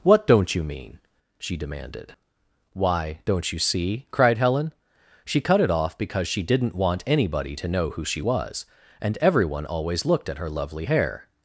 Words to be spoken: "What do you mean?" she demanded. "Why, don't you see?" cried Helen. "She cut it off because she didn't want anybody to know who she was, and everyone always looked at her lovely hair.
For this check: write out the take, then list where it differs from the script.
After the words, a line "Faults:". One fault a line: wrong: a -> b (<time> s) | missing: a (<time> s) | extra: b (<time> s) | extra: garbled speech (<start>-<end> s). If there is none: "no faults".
"What don't you mean?" she demanded. "Why, don't you see?" cried Helen. "She cut it off because she didn't want anybody to know who she was, and everyone always looked at her lovely hair.
Faults:
wrong: do -> don't (0.2 s)